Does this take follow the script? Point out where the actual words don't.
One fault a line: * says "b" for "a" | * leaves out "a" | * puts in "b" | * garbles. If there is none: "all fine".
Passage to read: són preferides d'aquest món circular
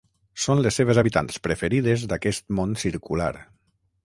* puts in "les seves habitants"